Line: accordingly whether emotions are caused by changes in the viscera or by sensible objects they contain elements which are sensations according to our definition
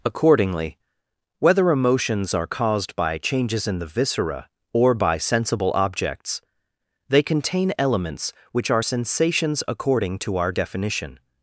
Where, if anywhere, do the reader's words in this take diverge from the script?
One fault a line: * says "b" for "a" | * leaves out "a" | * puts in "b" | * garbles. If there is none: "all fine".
all fine